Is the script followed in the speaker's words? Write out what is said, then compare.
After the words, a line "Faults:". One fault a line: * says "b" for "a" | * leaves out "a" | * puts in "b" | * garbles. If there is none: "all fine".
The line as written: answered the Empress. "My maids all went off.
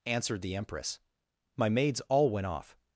answered the Empress. "My maids all went off.
Faults:
all fine